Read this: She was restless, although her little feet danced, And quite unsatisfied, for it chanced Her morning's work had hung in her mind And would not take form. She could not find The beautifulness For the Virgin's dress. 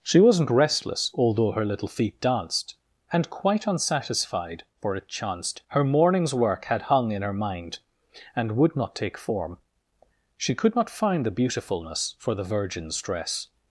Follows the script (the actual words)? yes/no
no